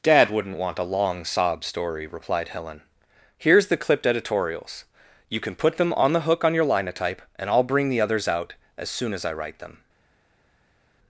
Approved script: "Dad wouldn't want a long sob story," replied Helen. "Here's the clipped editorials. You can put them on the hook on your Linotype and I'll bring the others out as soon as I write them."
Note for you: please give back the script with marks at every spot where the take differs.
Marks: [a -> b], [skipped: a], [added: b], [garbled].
"Dad wouldn't want a long sob story," replied Helen. "Here's the clipped editorials. You can put them on the hook on your Linotype and I'll bring the others out as soon as I write them."